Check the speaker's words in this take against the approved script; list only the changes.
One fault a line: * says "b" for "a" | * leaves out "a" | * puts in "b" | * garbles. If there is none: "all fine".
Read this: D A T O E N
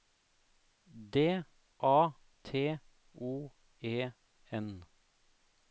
all fine